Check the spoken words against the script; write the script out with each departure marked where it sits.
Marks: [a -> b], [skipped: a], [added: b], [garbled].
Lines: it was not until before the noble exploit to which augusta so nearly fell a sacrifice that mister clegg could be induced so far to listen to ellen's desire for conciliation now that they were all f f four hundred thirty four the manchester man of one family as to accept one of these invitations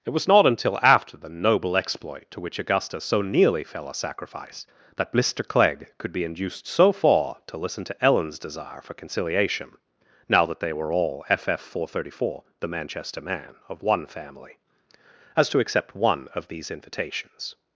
it was not until [before -> after] the noble exploit to which augusta so nearly fell a sacrifice that mister clegg could be induced so far to listen to ellen's desire for conciliation now that they were all f f four hundred thirty four the manchester man of one family as to accept one of these invitations